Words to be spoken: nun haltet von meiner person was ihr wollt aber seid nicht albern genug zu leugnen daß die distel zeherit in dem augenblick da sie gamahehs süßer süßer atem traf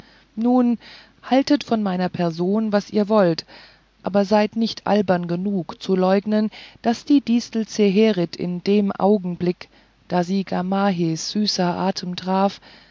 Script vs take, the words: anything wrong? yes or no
yes